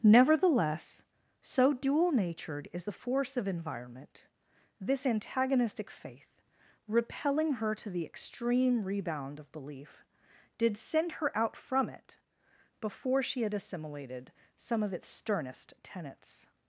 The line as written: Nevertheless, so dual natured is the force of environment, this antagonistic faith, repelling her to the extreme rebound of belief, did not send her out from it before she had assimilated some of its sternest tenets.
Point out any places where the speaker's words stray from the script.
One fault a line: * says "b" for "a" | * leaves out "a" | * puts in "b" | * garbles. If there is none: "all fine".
* leaves out "not"